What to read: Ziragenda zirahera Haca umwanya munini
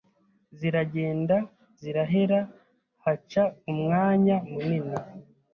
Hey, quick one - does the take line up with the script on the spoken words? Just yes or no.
yes